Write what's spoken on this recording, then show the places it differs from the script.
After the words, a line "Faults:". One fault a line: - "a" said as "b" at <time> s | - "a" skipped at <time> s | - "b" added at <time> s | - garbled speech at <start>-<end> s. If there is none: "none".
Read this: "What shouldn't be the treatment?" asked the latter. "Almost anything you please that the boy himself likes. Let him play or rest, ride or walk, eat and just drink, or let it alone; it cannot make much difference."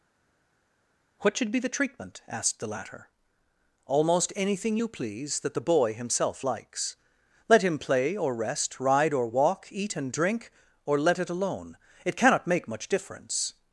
"What should be the treatment?" asked the latter. "Almost anything you please that the boy himself likes. Let him play or rest, ride or walk, eat and drink, or let it alone; it cannot make much difference."
Faults:
- "shouldn't" said as "should" at 1.4 s
- "just" skipped at 10.1 s